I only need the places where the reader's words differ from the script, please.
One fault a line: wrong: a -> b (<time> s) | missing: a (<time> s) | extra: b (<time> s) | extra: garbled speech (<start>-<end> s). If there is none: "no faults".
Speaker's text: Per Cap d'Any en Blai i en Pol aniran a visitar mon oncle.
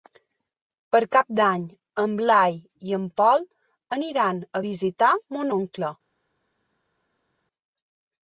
no faults